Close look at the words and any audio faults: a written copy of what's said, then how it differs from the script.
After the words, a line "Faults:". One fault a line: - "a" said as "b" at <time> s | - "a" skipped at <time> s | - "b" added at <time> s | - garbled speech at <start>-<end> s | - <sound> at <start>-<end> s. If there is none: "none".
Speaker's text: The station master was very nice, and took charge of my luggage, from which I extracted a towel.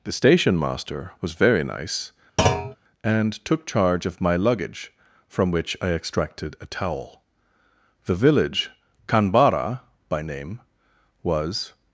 The station master was very nice, and took charge of my luggage, from which I extracted a towel. The village Kanbara by name was
Faults:
- thud at 2.4-2.8 s
- "The village Kanbara by name was" added at 8.1 s